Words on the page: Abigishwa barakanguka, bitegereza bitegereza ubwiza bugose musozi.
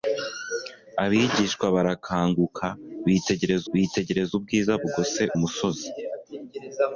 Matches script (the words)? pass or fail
pass